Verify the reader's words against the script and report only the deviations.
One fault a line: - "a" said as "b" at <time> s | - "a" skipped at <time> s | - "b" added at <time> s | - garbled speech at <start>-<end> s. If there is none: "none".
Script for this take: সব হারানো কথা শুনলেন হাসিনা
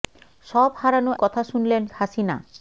none